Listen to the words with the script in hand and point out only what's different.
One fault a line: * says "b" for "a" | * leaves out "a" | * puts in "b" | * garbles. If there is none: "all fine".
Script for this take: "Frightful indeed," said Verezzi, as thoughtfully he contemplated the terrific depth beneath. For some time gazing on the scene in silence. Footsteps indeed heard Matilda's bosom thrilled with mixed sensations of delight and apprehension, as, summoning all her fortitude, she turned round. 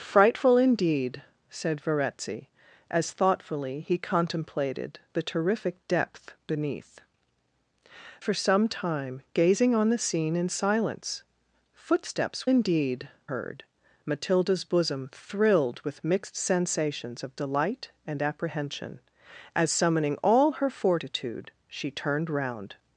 all fine